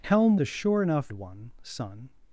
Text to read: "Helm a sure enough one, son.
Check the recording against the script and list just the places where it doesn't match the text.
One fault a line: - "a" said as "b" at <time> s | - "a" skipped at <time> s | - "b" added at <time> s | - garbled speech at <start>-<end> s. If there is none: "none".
none